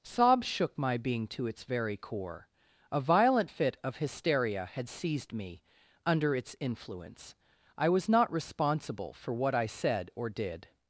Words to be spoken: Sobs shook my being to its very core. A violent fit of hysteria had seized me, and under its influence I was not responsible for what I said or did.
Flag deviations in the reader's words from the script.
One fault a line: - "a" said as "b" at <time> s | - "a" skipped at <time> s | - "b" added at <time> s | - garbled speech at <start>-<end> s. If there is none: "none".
- "and" skipped at 5.6 s